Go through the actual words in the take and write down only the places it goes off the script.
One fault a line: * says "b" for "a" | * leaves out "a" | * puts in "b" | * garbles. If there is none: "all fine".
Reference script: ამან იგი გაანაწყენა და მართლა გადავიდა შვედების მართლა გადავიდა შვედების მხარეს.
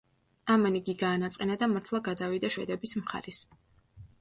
* leaves out "მართლა გადავიდა შვედების"